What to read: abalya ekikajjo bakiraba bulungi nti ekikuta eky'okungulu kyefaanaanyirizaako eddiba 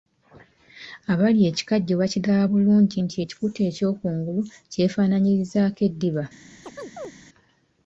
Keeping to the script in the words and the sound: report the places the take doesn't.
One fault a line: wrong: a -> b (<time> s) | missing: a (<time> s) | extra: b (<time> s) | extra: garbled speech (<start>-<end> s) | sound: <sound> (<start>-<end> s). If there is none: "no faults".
sound: chirp (6.6-7.1 s)